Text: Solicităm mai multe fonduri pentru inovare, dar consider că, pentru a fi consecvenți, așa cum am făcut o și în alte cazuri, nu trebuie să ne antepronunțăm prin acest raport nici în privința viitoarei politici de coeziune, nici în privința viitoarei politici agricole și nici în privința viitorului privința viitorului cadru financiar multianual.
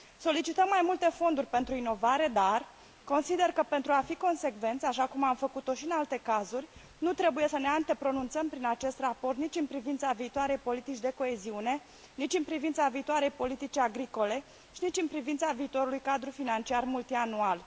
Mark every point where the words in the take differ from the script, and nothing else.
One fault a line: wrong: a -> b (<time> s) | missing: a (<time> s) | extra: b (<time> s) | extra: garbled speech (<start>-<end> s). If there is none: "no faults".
missing: privința viitorului (16.0 s)